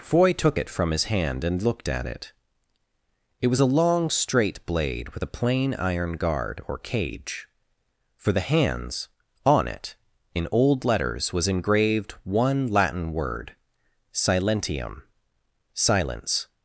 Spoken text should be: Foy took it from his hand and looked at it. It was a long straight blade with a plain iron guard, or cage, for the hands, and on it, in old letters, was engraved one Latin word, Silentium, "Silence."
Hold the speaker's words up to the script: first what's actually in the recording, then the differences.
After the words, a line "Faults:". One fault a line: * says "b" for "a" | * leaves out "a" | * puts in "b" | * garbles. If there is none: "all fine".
Foy took it from his hand and looked at it. It was a long straight blade with a plain iron guard, or cage, for the hands, on it, in old letters, was engraved one Latin word, Silentium, "Silence."
Faults:
* leaves out "and"